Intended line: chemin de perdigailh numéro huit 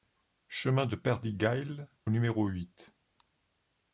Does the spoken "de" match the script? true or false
true